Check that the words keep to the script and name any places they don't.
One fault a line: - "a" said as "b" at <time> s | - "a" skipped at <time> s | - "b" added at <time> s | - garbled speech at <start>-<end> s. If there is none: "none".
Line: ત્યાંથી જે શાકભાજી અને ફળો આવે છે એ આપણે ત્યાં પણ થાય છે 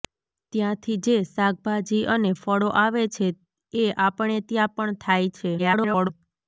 - garbled speech at 5.6-6.1 s